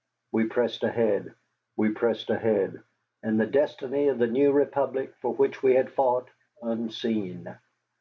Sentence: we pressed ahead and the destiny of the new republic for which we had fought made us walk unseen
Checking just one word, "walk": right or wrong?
wrong